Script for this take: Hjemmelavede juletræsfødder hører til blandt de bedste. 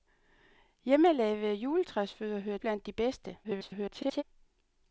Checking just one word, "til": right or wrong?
wrong